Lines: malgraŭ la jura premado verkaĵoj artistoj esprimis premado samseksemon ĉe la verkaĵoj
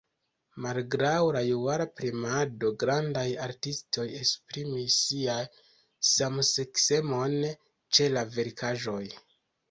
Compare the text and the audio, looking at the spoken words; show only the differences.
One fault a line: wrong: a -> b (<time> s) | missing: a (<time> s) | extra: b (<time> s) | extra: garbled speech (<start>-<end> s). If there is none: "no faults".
wrong: verkaĵoj -> grandaj (2.8 s)
wrong: premado -> sian (5.1 s)